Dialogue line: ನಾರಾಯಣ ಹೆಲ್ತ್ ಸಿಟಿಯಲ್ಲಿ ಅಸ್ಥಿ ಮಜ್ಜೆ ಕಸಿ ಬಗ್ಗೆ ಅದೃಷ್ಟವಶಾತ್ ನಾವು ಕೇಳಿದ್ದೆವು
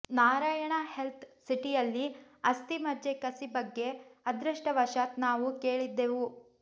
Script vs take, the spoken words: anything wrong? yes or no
no